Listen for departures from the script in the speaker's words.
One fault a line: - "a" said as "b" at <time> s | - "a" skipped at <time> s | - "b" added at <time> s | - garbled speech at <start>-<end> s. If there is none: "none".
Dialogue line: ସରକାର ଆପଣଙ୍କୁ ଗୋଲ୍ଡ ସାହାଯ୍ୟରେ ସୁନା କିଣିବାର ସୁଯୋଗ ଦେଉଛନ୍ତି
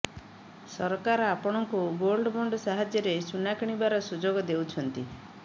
- "ବଣ୍ଡ" added at 2.4 s